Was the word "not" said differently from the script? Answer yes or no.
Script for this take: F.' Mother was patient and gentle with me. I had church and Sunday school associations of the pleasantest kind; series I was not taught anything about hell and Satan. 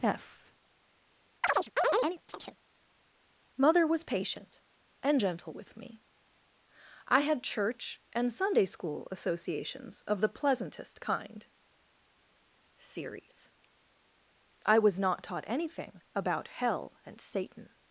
no